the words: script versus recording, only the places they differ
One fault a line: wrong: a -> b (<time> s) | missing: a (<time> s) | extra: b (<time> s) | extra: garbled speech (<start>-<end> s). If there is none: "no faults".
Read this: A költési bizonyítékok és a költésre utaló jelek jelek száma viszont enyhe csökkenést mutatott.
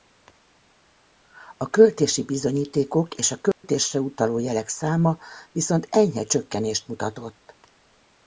missing: jelek (4.7 s)